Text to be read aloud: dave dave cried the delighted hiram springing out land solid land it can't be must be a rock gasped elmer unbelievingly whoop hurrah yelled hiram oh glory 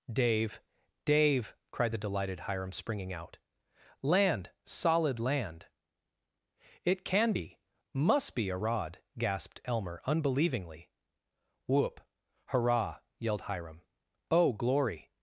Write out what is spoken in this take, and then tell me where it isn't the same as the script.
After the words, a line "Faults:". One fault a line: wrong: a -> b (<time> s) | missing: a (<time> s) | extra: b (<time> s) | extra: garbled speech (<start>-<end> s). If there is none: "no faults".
dave dave cried the delighted hiram springing out land solid land it can be must be a rod gasped elmer unbelievingly whoop hurrah yelled hiram oh glory
Faults:
wrong: can't -> can (7.0 s)
wrong: rock -> rod (8.6 s)